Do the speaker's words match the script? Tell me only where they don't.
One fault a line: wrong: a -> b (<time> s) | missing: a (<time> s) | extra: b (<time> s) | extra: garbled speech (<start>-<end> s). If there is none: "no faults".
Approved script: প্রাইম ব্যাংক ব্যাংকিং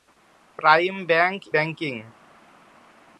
no faults